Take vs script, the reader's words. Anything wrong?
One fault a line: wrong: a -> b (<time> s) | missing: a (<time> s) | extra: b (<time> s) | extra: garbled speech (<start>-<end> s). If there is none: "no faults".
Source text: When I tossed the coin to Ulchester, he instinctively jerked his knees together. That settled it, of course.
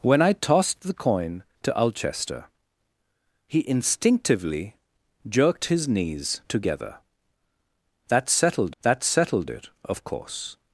extra: that settled (8.8 s)